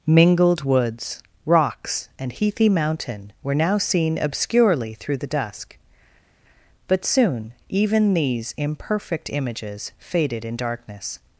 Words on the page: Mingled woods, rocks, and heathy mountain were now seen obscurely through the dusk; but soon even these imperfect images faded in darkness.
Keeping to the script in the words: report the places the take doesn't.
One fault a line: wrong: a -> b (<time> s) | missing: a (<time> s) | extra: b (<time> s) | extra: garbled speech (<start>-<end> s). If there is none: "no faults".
no faults